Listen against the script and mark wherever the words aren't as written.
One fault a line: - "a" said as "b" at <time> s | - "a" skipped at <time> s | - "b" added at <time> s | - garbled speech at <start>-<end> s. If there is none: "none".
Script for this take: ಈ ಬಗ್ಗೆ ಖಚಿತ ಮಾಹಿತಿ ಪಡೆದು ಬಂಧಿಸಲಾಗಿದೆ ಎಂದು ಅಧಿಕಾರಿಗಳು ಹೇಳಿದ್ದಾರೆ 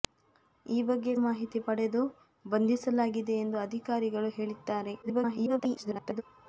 - "ಖಚಿತ" skipped at 1.1 s
- garbled speech at 5.0-6.2 s